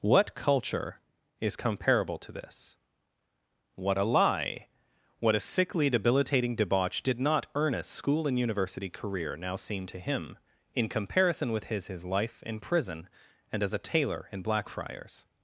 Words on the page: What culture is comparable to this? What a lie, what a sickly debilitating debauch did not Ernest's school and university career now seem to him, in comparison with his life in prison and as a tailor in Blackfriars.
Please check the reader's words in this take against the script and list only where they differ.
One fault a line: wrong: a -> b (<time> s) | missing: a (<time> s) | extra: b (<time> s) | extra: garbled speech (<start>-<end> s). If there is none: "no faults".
extra: his (11.9 s)